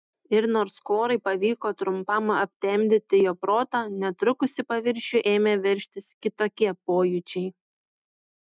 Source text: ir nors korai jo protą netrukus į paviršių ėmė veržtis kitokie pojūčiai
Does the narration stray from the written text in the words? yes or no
yes